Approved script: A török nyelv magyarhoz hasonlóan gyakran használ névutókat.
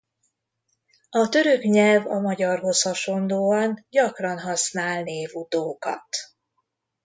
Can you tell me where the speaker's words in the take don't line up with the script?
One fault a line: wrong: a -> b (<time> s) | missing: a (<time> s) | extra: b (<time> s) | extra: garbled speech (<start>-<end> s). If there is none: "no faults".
extra: a (2.1 s)